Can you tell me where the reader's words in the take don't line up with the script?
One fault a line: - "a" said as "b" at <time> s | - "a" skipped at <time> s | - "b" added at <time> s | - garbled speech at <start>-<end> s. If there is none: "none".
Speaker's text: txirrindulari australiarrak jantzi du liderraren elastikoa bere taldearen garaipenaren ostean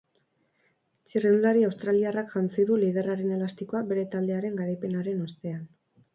none